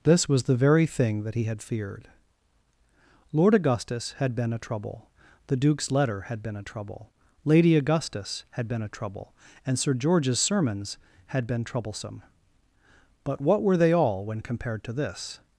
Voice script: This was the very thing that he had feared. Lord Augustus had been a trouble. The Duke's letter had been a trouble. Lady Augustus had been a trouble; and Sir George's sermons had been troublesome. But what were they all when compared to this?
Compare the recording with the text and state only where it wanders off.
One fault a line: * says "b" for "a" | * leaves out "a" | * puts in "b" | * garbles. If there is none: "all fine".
all fine